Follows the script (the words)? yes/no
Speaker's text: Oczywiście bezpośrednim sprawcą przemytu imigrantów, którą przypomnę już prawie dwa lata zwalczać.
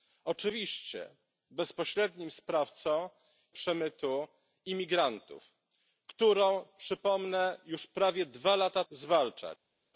yes